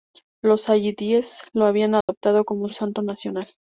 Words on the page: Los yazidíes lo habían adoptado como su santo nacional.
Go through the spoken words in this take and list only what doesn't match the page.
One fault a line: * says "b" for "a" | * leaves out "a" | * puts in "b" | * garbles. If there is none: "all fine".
* leaves out "su"